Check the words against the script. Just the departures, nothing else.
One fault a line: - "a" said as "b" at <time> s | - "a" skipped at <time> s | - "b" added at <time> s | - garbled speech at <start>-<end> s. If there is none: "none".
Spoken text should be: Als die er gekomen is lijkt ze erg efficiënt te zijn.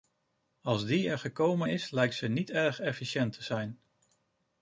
- "niet" added at 2.3 s